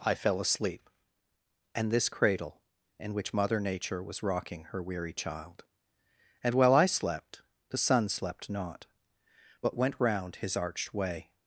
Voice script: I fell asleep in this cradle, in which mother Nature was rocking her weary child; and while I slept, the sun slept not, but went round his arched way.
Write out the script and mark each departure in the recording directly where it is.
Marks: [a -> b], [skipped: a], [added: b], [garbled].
I fell asleep [in -> and] this cradle, in which mother Nature was rocking her weary child; and while I slept, the sun slept not, but went round his arched way.